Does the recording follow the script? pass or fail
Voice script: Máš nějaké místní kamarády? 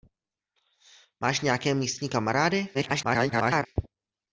fail